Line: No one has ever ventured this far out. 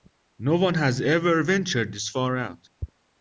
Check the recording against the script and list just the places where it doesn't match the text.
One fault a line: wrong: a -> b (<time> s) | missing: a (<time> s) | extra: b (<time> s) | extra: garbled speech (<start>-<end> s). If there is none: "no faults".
no faults